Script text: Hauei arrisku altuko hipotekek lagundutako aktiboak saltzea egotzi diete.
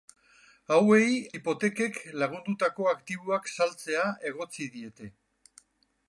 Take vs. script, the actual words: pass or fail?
fail